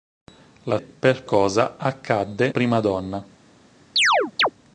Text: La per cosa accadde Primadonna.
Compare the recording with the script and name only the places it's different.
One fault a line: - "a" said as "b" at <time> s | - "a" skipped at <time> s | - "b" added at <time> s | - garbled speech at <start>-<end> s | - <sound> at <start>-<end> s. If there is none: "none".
- chirp at 4.0-4.5 s